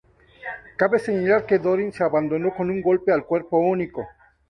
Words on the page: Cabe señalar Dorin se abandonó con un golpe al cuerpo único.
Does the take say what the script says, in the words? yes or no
no